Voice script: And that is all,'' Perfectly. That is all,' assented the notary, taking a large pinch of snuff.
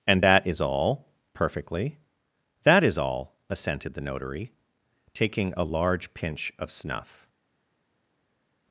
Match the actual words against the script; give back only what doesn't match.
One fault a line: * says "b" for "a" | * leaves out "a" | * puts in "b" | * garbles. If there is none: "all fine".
all fine